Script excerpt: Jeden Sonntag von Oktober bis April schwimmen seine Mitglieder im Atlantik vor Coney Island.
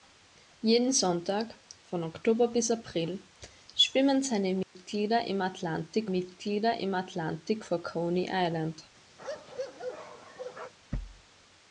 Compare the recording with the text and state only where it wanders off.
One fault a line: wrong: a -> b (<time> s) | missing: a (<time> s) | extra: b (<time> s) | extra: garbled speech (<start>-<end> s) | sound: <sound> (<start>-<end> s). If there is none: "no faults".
sound: dropout (4.6-4.8 s)
extra: Mitglieder im Atlantik (6.1 s)
sound: bark (9.2-10.7 s)